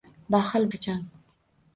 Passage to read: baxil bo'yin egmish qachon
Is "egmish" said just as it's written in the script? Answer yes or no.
no